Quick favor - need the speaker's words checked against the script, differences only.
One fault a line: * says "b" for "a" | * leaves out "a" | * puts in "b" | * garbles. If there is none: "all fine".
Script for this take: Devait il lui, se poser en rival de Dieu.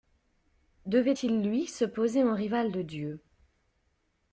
all fine